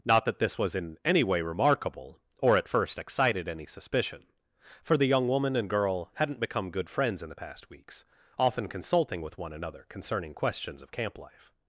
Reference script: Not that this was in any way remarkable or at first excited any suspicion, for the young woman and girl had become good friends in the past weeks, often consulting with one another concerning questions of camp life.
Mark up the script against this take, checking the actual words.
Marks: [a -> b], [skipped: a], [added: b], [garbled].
Not that this was in any way remarkable or at first excited any suspicion, for the young woman and girl [had -> hadn't] become good friends in the past weeks, often consulting with one another concerning questions of camp life.